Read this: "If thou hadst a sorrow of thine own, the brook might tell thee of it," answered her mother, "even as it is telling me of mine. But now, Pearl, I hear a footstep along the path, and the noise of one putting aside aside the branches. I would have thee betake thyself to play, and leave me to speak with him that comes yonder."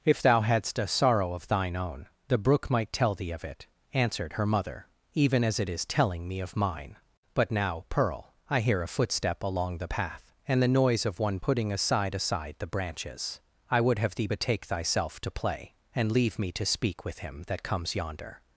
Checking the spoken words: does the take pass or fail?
pass